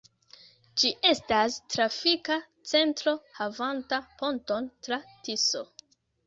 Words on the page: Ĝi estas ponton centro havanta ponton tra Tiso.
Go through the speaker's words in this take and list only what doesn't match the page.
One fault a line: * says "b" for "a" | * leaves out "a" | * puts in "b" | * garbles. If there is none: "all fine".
* says "trafika" for "ponton"